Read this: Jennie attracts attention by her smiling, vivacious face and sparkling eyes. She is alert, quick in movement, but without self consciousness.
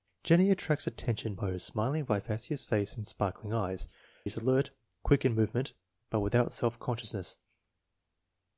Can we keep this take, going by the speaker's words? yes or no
no